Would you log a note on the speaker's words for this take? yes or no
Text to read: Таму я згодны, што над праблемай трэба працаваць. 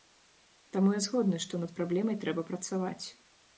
no